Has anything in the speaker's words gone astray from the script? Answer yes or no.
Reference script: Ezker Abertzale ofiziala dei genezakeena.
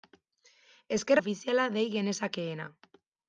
yes